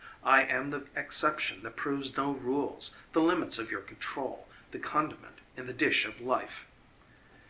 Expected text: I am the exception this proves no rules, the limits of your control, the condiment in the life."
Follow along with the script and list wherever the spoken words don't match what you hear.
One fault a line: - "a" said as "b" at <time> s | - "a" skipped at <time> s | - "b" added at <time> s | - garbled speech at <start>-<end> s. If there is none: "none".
- "this" said as "that" at 1.6 s
- "dish of" added at 5.7 s